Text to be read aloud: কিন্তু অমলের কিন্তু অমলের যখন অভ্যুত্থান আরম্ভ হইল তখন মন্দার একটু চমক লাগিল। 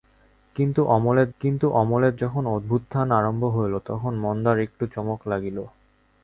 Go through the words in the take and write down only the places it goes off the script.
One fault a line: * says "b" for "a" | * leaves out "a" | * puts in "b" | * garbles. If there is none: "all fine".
all fine